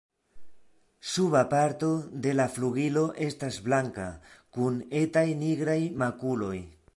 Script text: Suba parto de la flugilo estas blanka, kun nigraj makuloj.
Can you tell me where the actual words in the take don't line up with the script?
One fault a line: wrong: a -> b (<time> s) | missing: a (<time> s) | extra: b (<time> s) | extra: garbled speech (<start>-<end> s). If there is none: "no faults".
extra: etaj (5.0 s)